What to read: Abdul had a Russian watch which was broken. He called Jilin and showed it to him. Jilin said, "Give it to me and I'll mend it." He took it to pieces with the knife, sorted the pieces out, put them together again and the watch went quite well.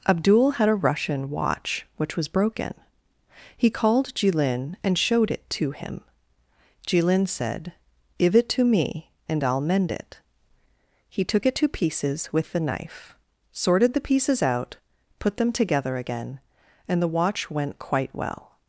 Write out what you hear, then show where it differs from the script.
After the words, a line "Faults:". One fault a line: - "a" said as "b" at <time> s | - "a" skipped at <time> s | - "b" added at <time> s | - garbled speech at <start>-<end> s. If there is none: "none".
Abdul had a Russian watch which was broken. He called Jilin and showed it to him. Jilin said, "Give it to me and I'll mend it." He took it to pieces with the knife, sorted the pieces out, put them together again and the watch went quite well.
Faults:
none